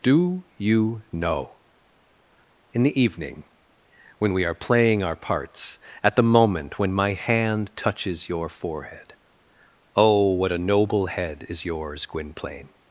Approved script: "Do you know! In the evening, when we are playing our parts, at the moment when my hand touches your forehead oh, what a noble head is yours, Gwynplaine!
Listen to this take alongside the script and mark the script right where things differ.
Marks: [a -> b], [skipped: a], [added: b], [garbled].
"Do you know! In the evening, when we are playing our parts, at the moment when my hand touches your forehead oh, what a noble head is yours, Gwynplaine!